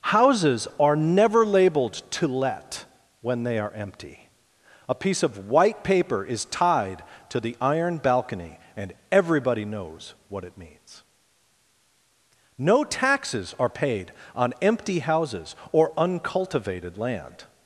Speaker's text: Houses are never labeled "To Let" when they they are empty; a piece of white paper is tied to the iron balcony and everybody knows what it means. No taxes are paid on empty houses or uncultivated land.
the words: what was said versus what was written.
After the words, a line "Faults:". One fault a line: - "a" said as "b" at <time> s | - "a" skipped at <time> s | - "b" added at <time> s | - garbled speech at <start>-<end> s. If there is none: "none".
Houses are never labeled "To Let" when they are empty; a piece of white paper is tied to the iron balcony and everybody knows what it means. No taxes are paid on empty houses or uncultivated land.
Faults:
- "they" skipped at 3.6 s